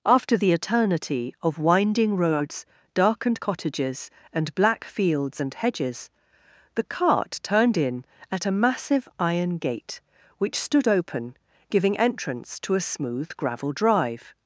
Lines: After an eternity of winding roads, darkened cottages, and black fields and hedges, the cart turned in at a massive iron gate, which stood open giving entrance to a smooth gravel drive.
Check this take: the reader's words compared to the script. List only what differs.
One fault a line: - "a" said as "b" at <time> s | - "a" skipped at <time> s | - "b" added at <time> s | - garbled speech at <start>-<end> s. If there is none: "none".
- "an" said as "the" at 0.3 s